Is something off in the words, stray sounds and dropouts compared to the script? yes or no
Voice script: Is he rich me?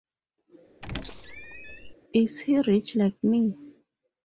yes